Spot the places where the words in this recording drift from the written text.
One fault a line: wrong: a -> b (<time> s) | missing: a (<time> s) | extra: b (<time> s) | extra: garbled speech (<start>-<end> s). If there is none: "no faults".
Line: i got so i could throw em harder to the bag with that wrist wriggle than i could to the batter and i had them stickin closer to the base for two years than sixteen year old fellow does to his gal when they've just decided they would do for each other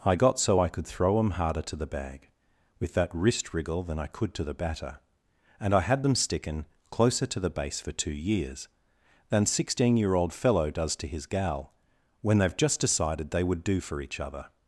no faults